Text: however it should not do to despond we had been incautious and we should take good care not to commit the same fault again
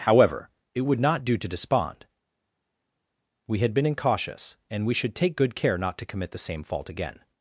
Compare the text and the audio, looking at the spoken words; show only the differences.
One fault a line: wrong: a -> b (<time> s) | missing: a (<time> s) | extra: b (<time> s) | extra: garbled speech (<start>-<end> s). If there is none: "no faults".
wrong: should -> would (0.8 s)